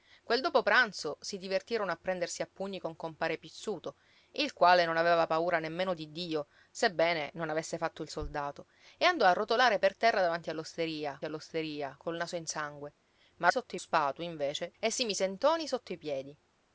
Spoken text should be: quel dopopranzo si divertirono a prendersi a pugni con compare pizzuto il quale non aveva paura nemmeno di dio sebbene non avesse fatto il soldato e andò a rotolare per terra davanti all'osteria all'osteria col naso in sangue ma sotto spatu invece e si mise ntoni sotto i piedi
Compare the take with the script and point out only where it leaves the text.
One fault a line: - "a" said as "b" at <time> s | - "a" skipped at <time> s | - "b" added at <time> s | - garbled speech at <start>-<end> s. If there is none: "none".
none